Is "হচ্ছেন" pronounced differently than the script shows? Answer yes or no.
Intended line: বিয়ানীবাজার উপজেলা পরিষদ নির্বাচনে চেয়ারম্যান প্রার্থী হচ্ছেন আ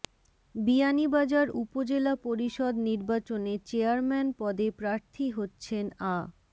no